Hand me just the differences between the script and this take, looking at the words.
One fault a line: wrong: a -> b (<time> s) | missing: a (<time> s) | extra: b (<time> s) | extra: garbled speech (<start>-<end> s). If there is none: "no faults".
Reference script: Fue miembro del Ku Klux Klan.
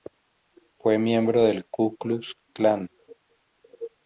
no faults